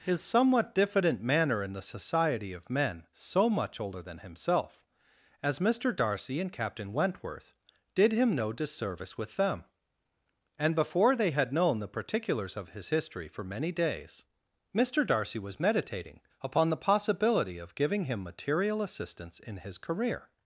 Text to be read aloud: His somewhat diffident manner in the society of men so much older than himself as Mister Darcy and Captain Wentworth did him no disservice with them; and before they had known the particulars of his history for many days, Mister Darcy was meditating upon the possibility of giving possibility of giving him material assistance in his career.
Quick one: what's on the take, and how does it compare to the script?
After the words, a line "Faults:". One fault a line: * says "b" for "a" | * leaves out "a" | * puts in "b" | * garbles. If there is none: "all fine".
His somewhat diffident manner in the society of men so much older than himself as Mister Darcy and Captain Wentworth did him no disservice with them; and before they had known the particulars of his history for many days, Mister Darcy was meditating upon the possibility of giving him material assistance in his career.
Faults:
* leaves out "possibility of giving"